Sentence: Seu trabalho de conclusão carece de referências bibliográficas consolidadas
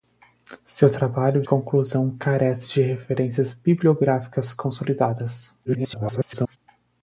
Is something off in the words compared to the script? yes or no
yes